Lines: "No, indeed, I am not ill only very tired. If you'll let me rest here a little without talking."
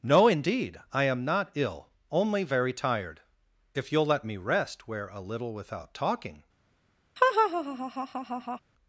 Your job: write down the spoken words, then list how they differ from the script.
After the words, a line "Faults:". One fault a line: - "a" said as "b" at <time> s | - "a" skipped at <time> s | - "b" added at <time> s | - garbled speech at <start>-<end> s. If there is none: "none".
"No, indeed, I am not ill only very tired. If you'll let me rest where a little without talking."
Faults:
- "here" said as "where" at 4.9 s